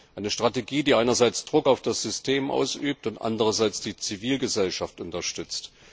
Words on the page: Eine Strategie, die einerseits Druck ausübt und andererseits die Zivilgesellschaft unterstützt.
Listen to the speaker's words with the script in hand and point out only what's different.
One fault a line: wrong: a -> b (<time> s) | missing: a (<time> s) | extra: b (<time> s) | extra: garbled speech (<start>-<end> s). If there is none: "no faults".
extra: auf das System (1.7 s)